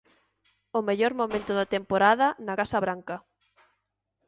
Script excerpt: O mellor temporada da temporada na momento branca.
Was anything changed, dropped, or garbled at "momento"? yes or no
yes